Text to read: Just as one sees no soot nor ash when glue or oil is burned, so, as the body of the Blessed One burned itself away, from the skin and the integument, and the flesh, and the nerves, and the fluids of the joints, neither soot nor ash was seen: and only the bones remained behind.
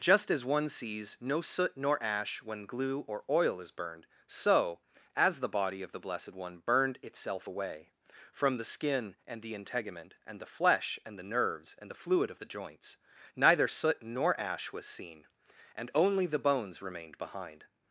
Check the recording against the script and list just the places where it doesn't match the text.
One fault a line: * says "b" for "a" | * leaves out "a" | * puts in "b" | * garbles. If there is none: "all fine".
* says "fluid" for "fluids"